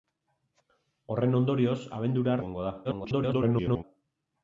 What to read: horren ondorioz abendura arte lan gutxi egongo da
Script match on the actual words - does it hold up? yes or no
no